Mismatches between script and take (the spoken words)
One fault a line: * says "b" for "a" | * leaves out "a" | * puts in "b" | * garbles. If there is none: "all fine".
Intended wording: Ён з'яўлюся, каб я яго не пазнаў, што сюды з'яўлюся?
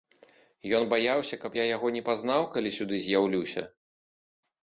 * says "баяўся" for "з'яўлюся"
* says "калі" for "што"